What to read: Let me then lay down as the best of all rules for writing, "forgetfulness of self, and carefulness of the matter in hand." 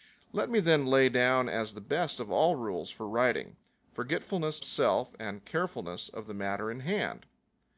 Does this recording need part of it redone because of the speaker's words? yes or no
yes